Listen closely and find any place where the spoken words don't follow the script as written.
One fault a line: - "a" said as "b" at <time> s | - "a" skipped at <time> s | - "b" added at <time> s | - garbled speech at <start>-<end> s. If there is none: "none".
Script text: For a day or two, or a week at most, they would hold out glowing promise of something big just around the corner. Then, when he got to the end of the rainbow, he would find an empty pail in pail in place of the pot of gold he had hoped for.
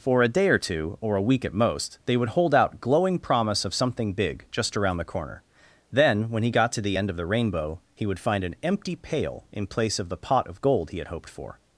- "pail in" skipped at 9.7 s